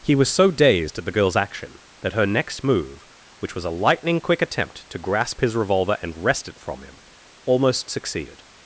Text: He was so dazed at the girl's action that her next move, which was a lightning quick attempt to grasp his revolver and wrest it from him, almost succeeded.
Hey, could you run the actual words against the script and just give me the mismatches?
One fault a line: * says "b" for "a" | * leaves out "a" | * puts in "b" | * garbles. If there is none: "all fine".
all fine